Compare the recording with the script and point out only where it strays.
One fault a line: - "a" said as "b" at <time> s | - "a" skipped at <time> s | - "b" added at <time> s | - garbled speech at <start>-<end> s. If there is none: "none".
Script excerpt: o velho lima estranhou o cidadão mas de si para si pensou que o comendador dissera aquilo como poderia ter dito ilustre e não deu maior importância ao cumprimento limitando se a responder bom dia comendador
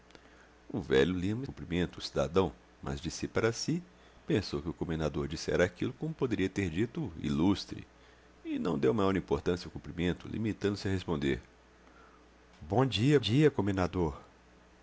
- "estranhou" said as "cumprimento" at 1.4 s
- "dia" added at 13.2 s